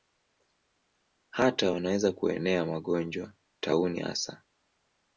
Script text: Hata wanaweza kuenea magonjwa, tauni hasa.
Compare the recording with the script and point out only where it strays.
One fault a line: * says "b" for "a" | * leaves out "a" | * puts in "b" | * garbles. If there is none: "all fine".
all fine